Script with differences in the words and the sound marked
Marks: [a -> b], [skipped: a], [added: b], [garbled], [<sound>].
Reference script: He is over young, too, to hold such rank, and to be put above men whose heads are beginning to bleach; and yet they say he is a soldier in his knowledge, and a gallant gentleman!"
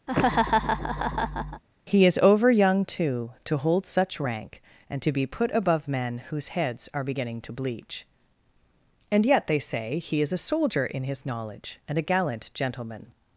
[laugh] He is over young, too, to hold such rank, and to be put above men whose heads are beginning to bleach; and yet they say he is a soldier in his knowledge, and a gallant gentleman!"